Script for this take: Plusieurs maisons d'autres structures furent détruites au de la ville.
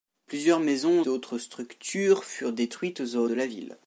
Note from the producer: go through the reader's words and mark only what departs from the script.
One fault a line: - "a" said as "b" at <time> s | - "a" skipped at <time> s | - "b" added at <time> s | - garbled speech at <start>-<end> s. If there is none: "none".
none